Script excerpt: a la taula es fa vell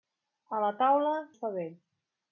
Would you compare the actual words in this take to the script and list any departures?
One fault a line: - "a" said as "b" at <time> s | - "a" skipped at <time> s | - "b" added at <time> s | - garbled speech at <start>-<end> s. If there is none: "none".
none